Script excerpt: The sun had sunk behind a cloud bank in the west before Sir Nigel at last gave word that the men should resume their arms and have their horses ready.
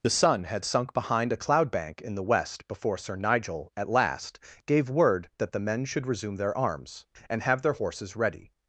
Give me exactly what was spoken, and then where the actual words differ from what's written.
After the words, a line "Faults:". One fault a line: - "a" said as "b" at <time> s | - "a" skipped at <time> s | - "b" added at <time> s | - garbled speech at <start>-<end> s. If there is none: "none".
The sun had sunk behind a cloud bank in the west before Sir Nigel at last gave word that the men should resume their arms and have their horses ready.
Faults:
none